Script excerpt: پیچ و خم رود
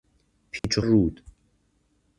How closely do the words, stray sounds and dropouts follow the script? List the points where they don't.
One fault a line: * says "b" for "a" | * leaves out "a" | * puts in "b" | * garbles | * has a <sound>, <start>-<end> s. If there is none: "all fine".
* has a dropout, 0.6-0.6 s
* leaves out "خم"